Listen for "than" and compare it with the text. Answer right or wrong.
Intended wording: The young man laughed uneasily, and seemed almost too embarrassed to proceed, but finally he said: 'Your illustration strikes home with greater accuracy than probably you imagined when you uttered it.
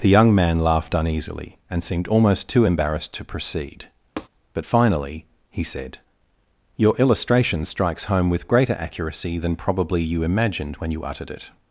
right